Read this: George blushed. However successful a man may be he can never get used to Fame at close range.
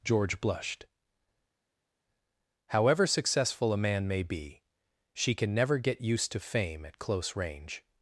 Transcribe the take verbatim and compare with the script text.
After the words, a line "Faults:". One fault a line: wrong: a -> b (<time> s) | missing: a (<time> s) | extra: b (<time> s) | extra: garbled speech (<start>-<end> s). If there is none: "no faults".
George blushed. However successful a man may be she can never get used to Fame at close range.
Faults:
wrong: he -> she (5.2 s)